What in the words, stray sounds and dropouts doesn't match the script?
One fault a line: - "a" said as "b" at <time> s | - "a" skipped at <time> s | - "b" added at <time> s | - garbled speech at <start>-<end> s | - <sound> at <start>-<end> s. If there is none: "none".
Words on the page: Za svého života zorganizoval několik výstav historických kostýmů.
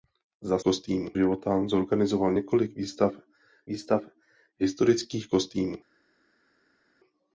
- "svého" said as "kostýmů" at 0.6 s
- "výstav" added at 3.7 s